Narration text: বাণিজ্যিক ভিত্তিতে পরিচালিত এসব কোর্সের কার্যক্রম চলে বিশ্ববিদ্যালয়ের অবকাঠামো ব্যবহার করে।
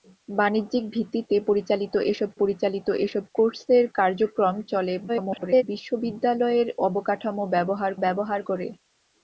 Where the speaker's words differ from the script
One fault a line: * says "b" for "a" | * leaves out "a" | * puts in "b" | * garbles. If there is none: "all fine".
* puts in "পরিচালিত এসব"
* garbles
* puts in "ব্যবহার"